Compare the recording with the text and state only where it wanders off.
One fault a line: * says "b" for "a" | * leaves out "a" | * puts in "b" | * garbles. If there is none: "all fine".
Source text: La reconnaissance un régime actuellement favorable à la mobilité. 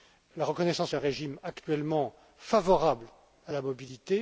all fine